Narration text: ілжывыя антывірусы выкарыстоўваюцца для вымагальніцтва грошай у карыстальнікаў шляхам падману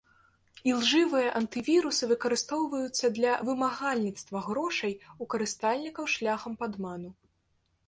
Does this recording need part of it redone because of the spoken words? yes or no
no